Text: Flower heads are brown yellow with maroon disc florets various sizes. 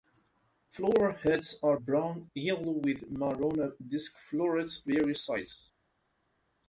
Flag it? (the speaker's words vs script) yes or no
no